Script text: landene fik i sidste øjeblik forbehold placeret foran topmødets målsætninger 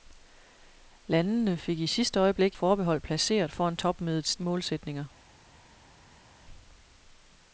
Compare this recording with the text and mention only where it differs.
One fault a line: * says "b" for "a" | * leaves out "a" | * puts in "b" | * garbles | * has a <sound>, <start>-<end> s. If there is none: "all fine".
all fine